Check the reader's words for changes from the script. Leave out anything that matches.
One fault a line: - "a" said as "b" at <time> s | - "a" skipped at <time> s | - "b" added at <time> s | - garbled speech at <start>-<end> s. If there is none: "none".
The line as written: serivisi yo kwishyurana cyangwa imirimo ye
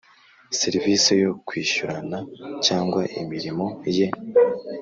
none